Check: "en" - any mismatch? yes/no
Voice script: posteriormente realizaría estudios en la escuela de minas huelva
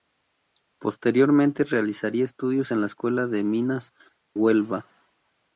no